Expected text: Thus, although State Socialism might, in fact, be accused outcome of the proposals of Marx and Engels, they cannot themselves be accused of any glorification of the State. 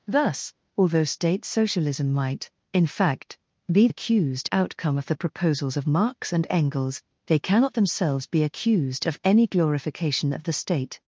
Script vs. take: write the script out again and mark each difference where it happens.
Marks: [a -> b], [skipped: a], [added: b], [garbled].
Thus, although State Socialism might, in fact, be accused outcome of the proposals of Marx and Engels, they cannot themselves be accused of any glorification of the State.